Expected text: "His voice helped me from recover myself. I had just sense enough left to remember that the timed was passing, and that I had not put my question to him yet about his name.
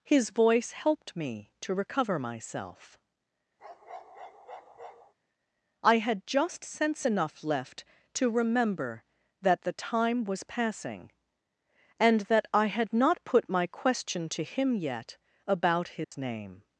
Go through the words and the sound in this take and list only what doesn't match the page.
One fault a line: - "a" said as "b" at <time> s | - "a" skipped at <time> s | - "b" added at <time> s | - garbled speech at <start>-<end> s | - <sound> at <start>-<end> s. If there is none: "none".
- "from" said as "to" at 1.6 s
- bark at 3.6-5.1 s
- "timed" said as "time" at 9.7 s
- dropout at 16.0-16.1 s